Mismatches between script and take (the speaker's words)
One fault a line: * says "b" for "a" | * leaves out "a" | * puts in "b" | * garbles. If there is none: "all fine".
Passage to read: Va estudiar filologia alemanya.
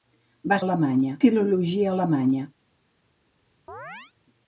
* says "alemanya" for "estudiar"